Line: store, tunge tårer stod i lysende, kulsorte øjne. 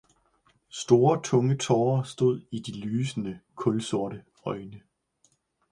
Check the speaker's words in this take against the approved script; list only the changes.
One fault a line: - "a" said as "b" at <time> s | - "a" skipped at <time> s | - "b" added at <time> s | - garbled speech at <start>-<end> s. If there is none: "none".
- "de" added at 2.6 s